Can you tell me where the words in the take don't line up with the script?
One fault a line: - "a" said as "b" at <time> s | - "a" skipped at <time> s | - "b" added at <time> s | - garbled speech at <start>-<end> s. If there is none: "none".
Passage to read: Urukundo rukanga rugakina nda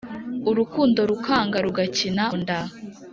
none